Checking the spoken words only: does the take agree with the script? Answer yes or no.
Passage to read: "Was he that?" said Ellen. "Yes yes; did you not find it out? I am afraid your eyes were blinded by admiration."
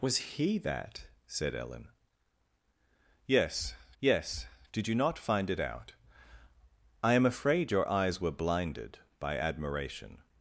yes